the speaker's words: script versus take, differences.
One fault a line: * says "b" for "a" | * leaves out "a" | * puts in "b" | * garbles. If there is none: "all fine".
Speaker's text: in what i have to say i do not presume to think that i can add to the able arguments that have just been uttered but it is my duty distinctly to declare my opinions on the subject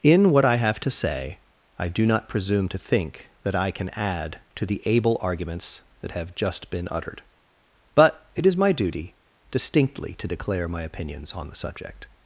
all fine